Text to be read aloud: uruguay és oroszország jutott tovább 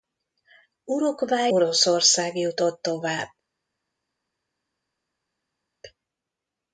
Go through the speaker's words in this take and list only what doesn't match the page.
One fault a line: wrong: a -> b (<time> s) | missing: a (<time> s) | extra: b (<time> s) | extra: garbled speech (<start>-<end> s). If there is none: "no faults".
missing: és (1.5 s)